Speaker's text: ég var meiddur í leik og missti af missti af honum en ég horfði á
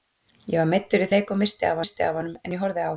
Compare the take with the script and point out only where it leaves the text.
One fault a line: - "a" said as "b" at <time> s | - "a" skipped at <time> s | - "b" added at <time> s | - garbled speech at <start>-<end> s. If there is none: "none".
none